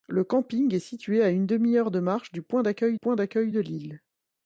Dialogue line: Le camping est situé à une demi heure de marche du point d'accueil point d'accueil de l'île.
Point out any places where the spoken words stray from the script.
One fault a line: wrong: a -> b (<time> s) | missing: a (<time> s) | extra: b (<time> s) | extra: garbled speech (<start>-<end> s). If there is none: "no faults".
no faults